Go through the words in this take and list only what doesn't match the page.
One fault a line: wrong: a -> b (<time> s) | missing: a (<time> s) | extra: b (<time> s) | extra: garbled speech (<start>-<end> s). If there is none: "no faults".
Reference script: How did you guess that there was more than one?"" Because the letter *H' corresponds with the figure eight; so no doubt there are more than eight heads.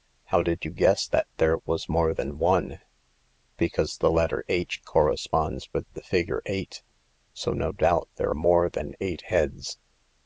missing: are (8.3 s)